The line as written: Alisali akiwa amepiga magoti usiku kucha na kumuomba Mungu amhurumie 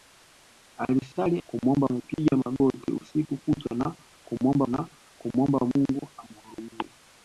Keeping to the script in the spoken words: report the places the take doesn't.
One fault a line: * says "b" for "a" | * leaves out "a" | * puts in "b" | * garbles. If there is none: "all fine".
* says "kumuomba" for "akiwa"
* puts in "na kumuomba"